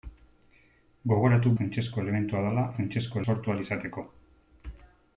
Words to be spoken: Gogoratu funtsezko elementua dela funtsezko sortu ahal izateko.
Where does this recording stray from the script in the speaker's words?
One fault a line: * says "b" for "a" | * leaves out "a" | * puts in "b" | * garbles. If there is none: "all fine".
all fine